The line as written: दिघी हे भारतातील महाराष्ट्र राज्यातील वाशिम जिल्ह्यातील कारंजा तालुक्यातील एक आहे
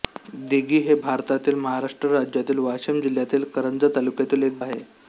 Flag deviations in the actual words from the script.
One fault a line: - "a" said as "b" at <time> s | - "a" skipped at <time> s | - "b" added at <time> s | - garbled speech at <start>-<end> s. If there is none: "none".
none